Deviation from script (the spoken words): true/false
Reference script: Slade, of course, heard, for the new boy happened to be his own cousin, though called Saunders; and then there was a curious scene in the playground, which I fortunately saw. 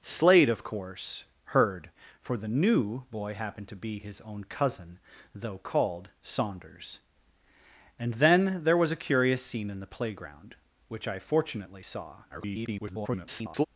true